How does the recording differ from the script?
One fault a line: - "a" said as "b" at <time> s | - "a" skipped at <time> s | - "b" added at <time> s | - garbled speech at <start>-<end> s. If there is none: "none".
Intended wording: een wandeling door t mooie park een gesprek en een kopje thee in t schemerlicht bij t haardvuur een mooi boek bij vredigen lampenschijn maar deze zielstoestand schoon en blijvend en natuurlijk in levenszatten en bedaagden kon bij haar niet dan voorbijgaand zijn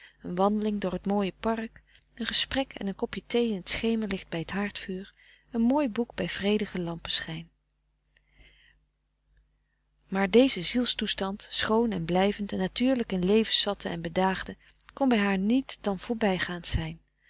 none